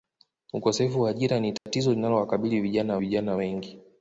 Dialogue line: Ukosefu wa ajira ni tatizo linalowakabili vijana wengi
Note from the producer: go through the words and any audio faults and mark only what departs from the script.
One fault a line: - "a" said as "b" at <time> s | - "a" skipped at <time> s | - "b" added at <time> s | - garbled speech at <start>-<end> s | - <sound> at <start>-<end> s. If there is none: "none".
- dropout at 1.6-1.7 s
- "vijana" added at 3.0 s